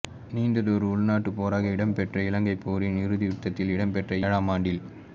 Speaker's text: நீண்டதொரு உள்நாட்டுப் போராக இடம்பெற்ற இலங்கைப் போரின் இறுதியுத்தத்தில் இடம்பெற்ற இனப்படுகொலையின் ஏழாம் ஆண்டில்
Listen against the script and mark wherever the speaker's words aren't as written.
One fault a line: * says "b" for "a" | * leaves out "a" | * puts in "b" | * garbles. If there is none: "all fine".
* leaves out "இனப்படுகொலையின்"